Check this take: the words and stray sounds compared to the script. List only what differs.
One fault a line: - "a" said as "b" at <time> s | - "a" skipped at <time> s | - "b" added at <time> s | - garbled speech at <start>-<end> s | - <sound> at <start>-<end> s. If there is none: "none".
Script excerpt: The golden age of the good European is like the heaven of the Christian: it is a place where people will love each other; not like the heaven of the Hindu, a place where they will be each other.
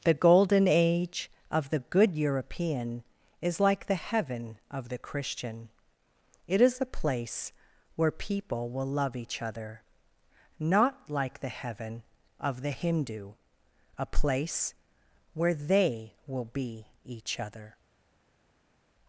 none